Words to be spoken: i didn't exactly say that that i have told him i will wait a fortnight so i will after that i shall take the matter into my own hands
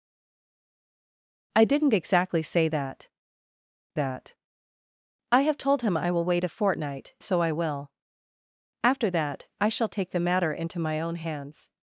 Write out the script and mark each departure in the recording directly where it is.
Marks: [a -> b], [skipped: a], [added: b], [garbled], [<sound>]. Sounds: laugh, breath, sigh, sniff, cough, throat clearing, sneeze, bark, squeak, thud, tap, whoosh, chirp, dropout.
i didn't exactly say that that i have told him i will wait a fortnight so i will after that i shall take the matter into my own hands